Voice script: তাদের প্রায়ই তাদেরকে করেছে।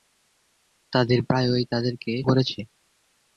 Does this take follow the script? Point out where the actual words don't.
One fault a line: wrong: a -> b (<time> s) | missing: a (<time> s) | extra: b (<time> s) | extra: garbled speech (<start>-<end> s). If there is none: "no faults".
no faults